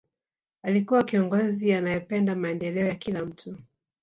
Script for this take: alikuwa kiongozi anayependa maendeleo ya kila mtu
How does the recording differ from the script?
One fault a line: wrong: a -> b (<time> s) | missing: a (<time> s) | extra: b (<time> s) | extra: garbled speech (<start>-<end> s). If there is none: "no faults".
no faults